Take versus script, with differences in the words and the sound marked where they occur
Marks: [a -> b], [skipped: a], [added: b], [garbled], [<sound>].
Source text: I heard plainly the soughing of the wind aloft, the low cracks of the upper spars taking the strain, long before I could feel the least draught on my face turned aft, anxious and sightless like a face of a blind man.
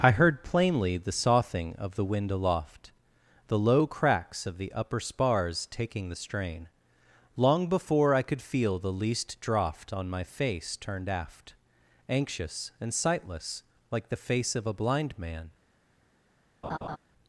I heard plainly the soughing of the wind aloft, the low cracks of the upper spars taking the strain, long before I could feel the least draught on my face turned aft, anxious and sightless like [a -> the] face of a blind man. [laugh]